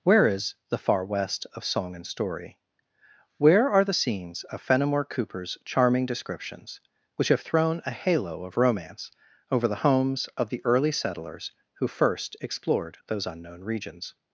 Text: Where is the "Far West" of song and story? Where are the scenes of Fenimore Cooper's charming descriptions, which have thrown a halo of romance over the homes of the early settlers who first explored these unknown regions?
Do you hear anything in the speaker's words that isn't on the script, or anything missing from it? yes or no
yes